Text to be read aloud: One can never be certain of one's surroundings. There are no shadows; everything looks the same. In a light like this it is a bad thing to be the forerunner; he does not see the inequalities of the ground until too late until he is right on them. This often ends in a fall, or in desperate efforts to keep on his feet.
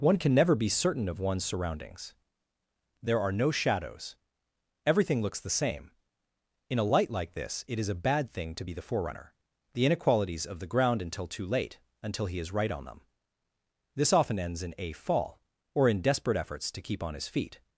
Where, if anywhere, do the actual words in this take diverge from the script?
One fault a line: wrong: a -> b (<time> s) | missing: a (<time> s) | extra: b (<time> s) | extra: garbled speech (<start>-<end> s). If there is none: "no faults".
missing: he does not see (9.3 s)